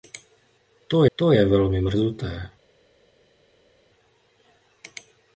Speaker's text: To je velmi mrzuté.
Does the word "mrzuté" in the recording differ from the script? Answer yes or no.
no